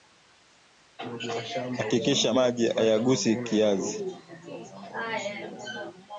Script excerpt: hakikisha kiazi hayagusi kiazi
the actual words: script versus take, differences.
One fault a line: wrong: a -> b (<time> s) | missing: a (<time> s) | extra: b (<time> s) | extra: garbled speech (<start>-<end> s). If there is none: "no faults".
wrong: kiazi -> maji (2.3 s)